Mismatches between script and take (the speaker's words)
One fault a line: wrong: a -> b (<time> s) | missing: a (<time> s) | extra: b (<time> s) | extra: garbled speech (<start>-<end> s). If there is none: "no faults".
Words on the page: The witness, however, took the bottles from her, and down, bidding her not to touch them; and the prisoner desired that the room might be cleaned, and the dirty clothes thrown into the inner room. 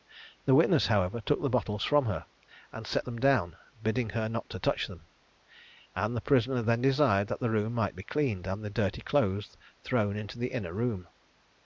extra: set them (2.9 s)
extra: then (6.6 s)